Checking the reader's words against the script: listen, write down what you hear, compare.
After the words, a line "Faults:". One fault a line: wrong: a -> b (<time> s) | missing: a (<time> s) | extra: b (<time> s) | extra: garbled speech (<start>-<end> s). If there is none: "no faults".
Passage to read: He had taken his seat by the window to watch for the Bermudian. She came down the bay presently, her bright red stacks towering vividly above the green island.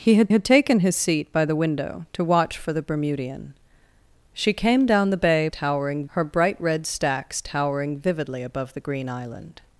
He had had taken his seat by the window to watch for the Bermudian. She came down the bay towering, her bright red stacks towering vividly above the green island.
Faults:
extra: had (0.3 s)
wrong: presently -> towering (5.5 s)